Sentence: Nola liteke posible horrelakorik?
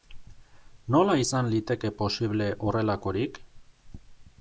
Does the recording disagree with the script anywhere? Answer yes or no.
yes